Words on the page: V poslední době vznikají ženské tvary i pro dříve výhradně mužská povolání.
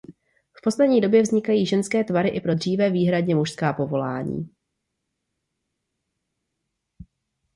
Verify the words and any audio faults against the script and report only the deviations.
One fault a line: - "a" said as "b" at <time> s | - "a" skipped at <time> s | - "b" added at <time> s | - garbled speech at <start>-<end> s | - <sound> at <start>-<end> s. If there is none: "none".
none